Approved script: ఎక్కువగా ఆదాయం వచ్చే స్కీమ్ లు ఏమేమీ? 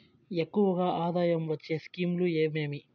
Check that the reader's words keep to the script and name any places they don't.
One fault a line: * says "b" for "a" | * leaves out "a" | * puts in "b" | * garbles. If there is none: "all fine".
all fine